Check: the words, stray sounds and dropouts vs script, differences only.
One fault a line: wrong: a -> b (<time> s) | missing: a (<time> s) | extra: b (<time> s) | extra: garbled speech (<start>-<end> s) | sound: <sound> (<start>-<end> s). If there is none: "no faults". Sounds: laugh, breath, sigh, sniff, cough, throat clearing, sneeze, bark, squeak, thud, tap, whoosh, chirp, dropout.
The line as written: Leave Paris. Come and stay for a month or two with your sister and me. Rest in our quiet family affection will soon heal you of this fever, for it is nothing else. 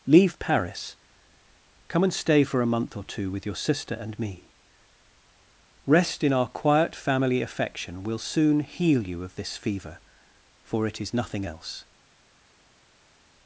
no faults